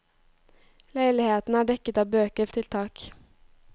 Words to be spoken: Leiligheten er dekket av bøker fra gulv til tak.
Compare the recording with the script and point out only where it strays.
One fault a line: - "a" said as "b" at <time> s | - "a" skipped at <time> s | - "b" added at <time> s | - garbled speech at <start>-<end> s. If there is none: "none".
- "fra gulv" skipped at 2.5 s